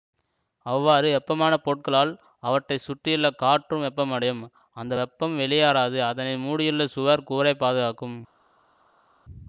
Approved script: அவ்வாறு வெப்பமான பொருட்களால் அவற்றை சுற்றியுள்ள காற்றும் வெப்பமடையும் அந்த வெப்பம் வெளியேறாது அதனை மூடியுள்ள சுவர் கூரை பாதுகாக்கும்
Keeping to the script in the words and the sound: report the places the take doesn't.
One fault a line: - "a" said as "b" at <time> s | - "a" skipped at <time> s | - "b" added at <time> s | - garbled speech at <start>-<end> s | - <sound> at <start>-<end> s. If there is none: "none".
none